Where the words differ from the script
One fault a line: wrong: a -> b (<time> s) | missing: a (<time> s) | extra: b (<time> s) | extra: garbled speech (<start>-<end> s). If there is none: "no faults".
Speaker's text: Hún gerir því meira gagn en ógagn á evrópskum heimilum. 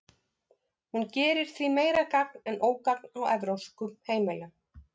no faults